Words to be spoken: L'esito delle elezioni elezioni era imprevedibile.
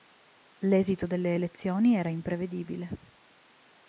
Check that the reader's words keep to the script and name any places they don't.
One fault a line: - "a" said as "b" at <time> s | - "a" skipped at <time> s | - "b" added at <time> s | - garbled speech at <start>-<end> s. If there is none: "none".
- "elezioni" skipped at 1.9 s